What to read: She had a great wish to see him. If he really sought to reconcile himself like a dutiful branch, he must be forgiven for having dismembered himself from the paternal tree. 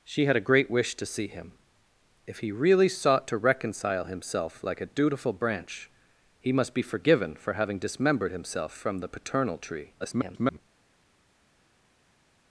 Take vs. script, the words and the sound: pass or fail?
fail